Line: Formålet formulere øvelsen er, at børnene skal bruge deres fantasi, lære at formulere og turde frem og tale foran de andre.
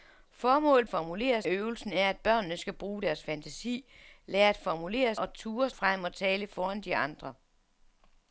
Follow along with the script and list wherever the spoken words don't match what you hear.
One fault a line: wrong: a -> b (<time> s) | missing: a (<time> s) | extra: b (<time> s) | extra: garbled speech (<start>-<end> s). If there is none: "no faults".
no faults